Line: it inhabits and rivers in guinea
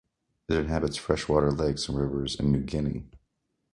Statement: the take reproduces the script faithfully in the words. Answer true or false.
false